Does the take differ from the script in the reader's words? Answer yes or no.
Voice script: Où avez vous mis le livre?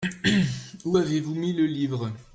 no